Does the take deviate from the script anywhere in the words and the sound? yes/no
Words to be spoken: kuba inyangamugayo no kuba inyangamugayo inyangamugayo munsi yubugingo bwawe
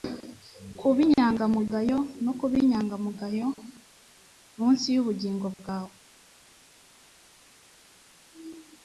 yes